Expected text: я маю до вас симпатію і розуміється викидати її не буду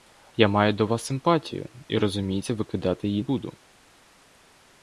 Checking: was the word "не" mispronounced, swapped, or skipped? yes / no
yes